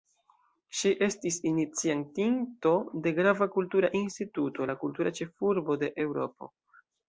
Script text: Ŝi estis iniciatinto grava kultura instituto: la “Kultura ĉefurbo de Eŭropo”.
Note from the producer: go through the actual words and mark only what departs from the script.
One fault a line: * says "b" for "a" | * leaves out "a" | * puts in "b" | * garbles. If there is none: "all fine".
* puts in "de"